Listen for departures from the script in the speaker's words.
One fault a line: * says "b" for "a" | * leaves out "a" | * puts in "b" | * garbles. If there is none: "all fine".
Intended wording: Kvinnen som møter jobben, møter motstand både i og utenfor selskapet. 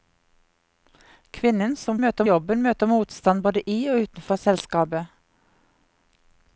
all fine